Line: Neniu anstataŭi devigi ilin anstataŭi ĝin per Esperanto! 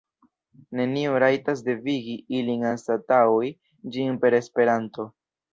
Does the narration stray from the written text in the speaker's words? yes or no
yes